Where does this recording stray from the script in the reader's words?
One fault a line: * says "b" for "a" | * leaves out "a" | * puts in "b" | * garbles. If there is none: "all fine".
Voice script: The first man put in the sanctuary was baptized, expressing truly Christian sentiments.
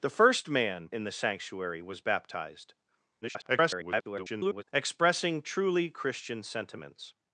* leaves out "put"
* garbles